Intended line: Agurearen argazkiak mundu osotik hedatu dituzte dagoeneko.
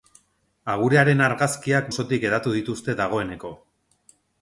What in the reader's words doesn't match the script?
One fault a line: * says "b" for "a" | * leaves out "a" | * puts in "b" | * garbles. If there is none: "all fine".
* leaves out "mundu"